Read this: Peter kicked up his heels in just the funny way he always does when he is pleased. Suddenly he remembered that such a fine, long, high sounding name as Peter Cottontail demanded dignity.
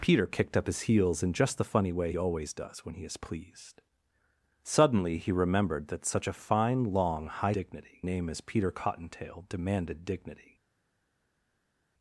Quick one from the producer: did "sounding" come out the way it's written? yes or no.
no